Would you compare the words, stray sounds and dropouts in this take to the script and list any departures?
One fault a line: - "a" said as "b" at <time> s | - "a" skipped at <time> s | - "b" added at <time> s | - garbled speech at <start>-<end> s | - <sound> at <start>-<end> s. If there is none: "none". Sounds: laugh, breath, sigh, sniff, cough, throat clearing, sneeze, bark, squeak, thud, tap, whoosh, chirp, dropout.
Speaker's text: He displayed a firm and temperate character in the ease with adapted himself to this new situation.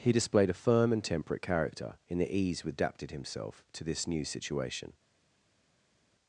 none